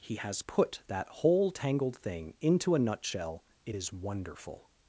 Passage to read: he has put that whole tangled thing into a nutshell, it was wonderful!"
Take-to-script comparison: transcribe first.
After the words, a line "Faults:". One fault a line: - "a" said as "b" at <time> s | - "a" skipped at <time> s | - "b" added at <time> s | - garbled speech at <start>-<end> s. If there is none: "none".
he has put that whole tangled thing into a nutshell, it is wonderful!"
Faults:
- "was" said as "is" at 3.7 s